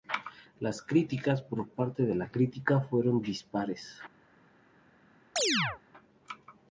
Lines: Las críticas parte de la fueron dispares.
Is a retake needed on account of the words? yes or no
yes